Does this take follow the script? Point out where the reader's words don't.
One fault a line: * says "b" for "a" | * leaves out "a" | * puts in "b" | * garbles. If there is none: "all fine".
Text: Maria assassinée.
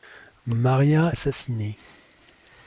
all fine